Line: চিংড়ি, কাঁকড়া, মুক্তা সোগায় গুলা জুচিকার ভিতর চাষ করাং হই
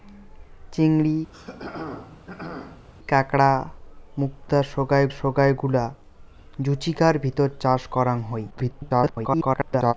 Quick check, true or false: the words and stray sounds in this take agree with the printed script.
false